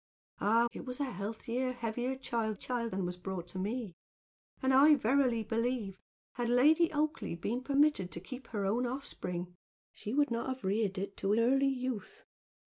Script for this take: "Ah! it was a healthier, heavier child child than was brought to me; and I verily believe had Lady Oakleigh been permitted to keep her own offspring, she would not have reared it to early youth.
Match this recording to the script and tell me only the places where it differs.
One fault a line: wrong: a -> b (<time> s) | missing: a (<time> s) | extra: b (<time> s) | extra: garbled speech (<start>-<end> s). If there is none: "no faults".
no faults